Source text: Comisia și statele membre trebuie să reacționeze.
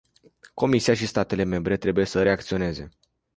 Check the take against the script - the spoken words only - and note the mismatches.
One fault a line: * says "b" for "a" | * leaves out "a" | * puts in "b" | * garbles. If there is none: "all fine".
all fine